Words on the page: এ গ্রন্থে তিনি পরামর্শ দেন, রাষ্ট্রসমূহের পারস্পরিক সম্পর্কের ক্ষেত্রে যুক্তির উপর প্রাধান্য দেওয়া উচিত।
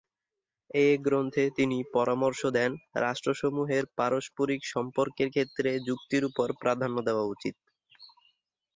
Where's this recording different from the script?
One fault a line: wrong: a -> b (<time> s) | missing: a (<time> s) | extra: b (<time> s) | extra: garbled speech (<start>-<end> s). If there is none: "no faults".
no faults